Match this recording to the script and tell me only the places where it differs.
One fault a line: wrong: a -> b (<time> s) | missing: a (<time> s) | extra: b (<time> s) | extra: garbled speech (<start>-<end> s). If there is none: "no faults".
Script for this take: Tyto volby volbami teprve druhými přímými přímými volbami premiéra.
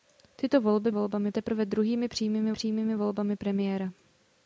no faults